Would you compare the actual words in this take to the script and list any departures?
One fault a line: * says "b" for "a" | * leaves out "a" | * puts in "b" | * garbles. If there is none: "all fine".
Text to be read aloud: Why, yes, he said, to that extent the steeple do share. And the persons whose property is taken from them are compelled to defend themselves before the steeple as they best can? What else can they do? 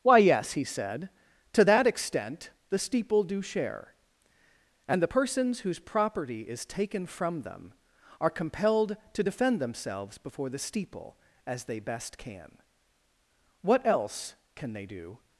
all fine